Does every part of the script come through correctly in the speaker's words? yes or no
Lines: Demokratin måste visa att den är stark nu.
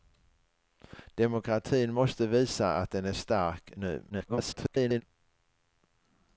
no